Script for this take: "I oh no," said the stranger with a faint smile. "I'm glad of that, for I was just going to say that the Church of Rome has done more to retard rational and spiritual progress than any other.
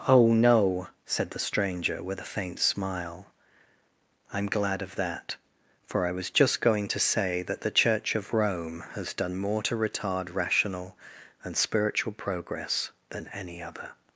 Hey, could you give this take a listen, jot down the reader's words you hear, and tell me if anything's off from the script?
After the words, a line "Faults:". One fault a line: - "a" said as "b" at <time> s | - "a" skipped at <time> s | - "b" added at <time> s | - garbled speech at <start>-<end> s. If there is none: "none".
oh no," said the stranger with a faint smile. "I'm glad of that, for I was just going to say that the Church of Rome has done more to retard rational and spiritual progress than any other.
Faults:
- "I" skipped at 0.1 s